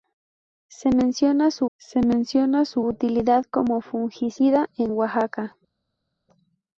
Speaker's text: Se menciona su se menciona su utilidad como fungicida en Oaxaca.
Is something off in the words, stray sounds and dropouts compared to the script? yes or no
no